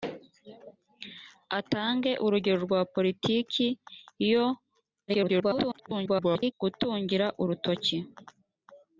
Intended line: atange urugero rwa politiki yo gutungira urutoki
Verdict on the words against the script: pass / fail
fail